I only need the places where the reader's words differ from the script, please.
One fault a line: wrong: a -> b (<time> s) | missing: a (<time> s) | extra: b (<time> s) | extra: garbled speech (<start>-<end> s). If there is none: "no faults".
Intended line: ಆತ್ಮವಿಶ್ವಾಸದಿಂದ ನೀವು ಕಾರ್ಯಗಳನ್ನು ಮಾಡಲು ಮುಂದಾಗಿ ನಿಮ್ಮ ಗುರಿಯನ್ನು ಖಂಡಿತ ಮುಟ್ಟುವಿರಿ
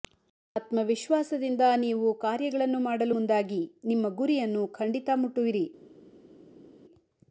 no faults